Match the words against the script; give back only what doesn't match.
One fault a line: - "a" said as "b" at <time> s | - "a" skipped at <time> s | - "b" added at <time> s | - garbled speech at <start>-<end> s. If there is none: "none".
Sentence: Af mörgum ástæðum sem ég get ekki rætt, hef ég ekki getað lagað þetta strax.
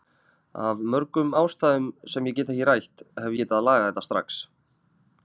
- "ég ekki" skipped at 3.4 s